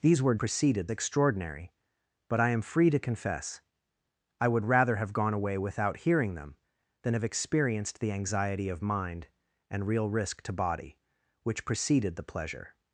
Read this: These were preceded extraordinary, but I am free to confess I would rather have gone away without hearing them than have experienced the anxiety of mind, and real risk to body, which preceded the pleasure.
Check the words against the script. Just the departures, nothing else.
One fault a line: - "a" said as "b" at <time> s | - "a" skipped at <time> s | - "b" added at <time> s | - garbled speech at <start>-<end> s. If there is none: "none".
none